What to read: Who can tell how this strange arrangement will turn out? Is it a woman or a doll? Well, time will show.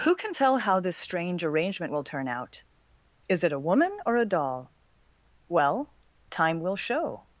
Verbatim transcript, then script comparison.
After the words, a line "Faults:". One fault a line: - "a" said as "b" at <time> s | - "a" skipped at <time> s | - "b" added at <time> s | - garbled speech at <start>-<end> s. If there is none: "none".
Who can tell how this strange arrangement will turn out? Is it a woman or a doll? Well, time will show.
Faults:
none